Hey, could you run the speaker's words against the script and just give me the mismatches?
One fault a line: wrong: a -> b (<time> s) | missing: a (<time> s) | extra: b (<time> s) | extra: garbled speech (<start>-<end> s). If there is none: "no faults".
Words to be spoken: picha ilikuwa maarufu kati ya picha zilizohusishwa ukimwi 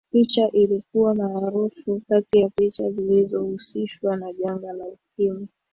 extra: na janga la (4.2 s)